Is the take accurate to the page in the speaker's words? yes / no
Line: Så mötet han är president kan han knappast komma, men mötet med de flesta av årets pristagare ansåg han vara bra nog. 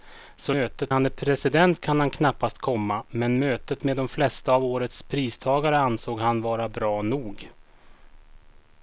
yes